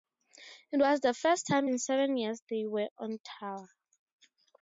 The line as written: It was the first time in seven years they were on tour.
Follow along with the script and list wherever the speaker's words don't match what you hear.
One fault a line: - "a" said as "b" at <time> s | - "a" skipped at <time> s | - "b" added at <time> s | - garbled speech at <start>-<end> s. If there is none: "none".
none